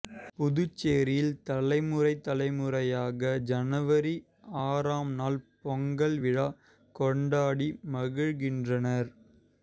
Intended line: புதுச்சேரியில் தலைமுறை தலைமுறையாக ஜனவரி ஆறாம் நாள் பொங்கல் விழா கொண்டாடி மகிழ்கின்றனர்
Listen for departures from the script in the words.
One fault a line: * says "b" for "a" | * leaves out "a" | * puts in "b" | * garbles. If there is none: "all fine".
all fine